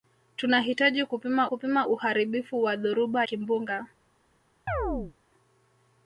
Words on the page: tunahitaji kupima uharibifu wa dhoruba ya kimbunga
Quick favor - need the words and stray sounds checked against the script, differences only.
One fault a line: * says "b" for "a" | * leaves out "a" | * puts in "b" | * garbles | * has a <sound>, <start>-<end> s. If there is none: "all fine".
* puts in "kupima"
* leaves out "ya"
* has a chirp, 4.7-5.1 s